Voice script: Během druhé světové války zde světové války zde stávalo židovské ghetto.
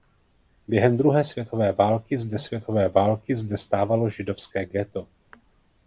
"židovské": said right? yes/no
yes